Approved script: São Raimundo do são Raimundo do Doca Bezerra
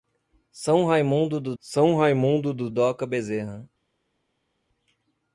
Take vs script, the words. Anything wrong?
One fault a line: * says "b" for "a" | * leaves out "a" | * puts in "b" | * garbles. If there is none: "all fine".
all fine